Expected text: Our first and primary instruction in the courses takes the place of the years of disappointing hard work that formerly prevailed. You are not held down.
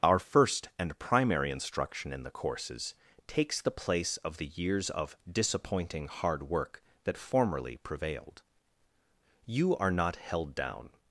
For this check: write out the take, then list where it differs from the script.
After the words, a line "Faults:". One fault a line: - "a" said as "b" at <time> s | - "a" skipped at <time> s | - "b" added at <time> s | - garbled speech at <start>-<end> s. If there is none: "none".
Our first and primary instruction in the courses takes the place of the years of disappointing hard work that formerly prevailed. You are not held down.
Faults:
none